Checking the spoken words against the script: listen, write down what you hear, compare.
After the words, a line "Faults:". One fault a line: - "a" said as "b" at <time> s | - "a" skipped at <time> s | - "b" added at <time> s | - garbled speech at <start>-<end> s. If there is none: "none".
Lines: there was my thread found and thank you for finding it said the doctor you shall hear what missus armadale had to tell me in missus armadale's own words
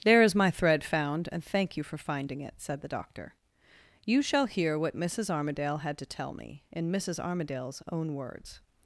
there is my thread found and thank you for finding it said the doctor you shall hear what missus armadale had to tell me in missus armadale's own words
Faults:
- "was" said as "is" at 0.2 s